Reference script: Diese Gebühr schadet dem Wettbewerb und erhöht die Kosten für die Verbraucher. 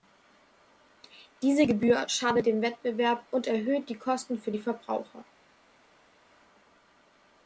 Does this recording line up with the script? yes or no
yes